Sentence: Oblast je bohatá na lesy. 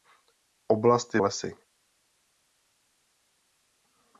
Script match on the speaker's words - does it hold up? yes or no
no